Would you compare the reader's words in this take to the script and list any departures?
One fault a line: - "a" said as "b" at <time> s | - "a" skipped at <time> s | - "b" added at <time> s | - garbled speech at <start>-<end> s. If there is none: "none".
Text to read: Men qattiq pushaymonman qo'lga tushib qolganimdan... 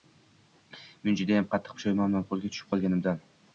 - "judayam" added at 1.2 s